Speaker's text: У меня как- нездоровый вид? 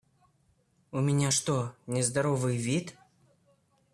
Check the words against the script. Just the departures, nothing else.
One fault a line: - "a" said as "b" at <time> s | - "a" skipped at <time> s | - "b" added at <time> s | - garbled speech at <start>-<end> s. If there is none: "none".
- "как" said as "что" at 1.3 s